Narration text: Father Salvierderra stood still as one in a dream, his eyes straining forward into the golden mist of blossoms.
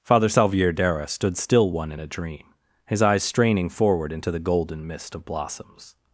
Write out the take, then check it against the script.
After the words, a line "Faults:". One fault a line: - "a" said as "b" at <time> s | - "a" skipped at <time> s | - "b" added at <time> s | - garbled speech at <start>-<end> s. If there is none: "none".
Father Salvierderra stood still one in a dream, his eyes straining forward into the golden mist of blossoms.
Faults:
- "as" skipped at 1.7 s